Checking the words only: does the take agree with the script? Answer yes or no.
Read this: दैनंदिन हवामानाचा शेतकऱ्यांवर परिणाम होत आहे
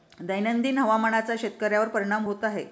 yes